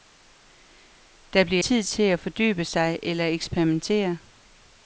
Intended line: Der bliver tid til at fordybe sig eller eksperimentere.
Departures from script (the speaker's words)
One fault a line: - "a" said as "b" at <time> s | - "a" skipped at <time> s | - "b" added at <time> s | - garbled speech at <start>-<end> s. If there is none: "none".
none